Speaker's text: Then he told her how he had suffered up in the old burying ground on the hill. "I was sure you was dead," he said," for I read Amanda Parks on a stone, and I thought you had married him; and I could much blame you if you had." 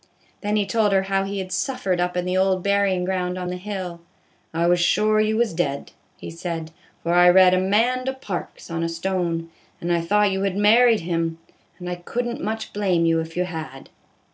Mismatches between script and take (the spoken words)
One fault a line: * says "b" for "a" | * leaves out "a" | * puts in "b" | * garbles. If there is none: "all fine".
* puts in "n't"